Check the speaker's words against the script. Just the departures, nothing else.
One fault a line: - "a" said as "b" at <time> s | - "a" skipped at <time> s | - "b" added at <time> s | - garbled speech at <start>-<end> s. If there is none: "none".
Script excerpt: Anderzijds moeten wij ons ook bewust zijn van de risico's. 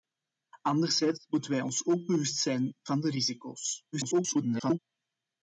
- garbled speech at 3.9-4.8 s